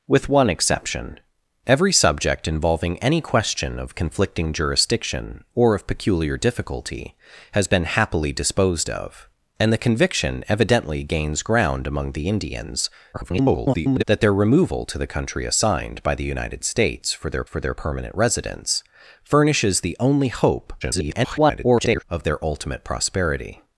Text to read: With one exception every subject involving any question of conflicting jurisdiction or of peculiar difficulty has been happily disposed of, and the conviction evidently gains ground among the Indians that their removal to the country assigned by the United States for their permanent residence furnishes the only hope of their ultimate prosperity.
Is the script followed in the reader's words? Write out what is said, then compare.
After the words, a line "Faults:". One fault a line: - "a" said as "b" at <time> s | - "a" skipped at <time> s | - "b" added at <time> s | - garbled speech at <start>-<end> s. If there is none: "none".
With one exception every subject involving any question of conflicting jurisdiction or of peculiar difficulty has been happily disposed of, and the conviction evidently gains ground among the Indians [garbled] that their removal to the country assigned by the United States for their for their permanent residence furnishes the only hope [garbled] of their ultimate prosperity.
Faults:
- garbled speech at 13.1-14.0 s
- "for their" added at 17.4 s
- garbled speech at 20.8-22.0 s